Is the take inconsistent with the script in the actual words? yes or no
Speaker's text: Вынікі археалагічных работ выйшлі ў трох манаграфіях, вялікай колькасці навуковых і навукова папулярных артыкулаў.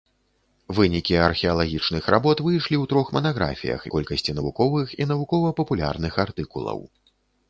yes